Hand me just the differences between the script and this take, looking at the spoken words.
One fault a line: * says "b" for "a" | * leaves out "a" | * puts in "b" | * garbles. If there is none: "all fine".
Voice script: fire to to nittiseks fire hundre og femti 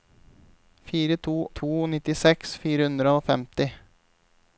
all fine